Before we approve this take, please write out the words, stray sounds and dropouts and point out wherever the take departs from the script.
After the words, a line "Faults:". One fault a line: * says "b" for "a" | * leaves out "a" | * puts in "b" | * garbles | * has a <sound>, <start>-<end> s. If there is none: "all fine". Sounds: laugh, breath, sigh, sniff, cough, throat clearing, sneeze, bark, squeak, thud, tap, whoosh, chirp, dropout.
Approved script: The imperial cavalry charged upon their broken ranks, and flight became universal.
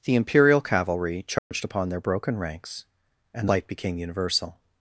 The imperial cavalry charged upon their broken ranks, and flight became universal.
Faults:
* has a dropout, 1.4-1.5 s